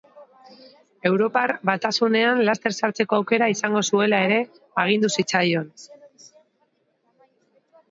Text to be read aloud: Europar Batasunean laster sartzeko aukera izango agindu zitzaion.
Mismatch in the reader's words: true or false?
true